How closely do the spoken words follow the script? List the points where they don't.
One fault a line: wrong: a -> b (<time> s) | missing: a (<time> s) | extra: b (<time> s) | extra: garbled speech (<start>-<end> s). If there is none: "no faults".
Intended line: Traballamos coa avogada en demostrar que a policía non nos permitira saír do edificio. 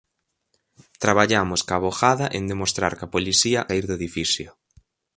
missing: non nos permitira (3.6 s)